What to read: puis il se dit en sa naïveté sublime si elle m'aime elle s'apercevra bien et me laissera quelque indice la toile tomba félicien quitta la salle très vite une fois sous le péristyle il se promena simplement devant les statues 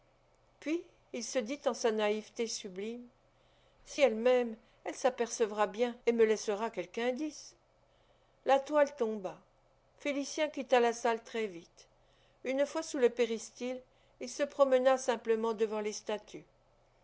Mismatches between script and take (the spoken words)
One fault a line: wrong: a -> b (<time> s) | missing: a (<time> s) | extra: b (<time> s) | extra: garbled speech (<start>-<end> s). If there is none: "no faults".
no faults